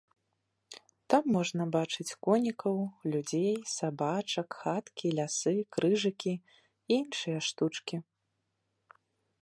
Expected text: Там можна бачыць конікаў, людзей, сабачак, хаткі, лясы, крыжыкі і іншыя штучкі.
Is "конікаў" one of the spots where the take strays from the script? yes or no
no